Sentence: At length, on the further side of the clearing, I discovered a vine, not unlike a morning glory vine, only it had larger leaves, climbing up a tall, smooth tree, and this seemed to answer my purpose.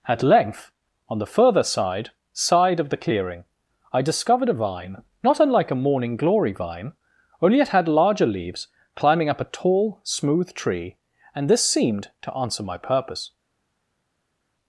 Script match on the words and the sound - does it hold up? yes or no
no